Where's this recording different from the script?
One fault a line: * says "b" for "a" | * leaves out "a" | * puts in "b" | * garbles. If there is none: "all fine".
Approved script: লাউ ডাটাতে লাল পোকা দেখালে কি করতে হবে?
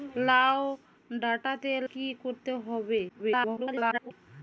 * leaves out "লাল পোকা দেখালে"
* garbles